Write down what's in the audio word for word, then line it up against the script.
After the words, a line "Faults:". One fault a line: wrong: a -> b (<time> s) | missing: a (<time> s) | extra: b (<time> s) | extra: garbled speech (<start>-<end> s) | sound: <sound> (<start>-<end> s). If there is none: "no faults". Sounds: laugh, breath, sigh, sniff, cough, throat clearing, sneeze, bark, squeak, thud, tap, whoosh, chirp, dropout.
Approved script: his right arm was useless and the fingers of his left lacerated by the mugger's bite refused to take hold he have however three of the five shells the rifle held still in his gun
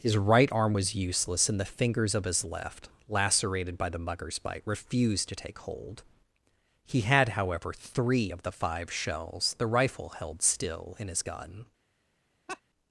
his right arm was useless and the fingers of his left lacerated by the mugger's bite refused to take hold he had however three of the five shells the rifle held still in his gun
Faults:
wrong: have -> had (7.0 s)
sound: laugh (12.5-12.6 s)